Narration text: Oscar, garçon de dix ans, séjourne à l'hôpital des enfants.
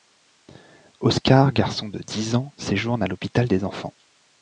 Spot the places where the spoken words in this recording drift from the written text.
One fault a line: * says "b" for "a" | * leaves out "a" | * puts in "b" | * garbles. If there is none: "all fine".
all fine